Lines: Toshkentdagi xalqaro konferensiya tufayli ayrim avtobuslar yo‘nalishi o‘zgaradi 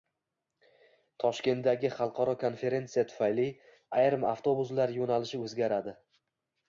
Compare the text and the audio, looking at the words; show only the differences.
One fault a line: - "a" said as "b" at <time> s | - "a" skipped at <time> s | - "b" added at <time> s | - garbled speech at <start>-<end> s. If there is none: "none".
none